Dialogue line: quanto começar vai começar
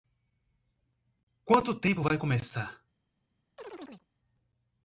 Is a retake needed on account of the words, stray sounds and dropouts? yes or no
yes